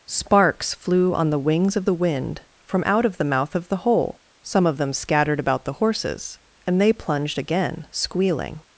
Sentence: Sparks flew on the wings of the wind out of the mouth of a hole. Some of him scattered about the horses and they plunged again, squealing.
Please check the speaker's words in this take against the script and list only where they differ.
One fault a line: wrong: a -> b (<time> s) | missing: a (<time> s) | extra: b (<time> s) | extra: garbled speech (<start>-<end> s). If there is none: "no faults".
extra: from (2.6 s)
wrong: a -> the (3.7 s)
wrong: him -> them (4.8 s)